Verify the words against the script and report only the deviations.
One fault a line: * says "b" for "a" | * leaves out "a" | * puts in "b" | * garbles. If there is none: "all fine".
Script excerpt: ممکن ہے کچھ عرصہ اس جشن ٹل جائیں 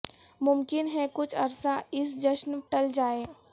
all fine